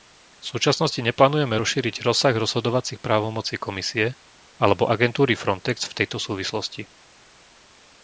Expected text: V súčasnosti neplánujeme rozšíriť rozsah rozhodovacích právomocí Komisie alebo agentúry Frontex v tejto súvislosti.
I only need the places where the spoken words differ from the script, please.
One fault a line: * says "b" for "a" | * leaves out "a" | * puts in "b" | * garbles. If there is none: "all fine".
all fine